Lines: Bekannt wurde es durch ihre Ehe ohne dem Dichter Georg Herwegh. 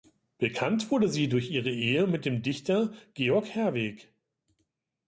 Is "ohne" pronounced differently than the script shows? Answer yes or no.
yes